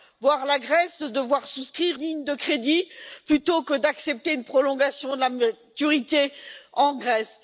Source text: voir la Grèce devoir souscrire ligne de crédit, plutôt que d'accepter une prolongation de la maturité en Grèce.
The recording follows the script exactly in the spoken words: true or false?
true